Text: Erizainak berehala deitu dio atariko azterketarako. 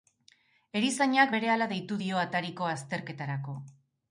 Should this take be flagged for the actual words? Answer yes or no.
no